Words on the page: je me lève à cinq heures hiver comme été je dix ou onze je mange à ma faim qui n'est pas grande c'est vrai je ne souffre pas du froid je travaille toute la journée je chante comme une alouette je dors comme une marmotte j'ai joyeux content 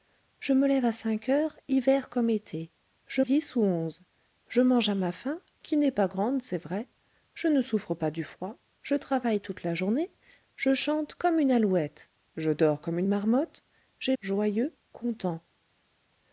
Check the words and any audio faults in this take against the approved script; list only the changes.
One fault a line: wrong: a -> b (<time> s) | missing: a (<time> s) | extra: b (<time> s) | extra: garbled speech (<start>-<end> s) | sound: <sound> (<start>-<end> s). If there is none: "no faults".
no faults